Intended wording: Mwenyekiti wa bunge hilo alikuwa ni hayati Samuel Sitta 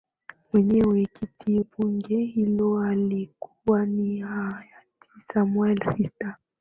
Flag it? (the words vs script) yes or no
yes